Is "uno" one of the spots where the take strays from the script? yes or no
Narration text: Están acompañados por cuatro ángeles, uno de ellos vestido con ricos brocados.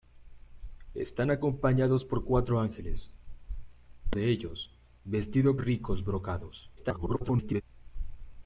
yes